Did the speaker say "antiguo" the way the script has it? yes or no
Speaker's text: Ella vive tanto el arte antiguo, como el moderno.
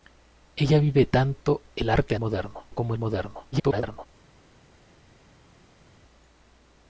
no